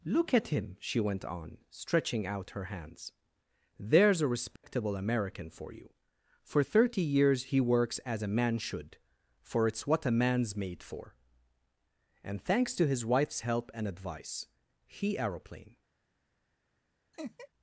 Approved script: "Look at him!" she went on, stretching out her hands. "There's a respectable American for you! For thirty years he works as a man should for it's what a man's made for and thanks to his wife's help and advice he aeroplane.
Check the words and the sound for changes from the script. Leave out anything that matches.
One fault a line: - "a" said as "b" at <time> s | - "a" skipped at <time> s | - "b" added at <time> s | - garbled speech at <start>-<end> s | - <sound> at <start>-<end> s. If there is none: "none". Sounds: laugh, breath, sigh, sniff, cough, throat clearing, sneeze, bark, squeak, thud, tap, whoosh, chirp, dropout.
- dropout at 4.6-4.6 s
- laugh at 17.1-17.5 s